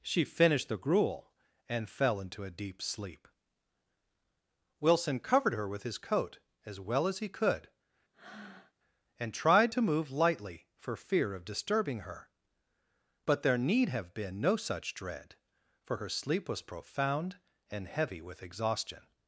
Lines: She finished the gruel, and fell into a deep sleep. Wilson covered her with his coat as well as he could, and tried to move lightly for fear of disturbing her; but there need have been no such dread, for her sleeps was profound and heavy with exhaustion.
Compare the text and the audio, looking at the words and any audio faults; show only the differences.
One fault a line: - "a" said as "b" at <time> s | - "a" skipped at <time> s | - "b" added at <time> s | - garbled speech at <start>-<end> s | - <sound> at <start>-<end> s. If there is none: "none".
- breath at 8.1-8.7 s
- "sleeps" said as "sleep" at 16.1 s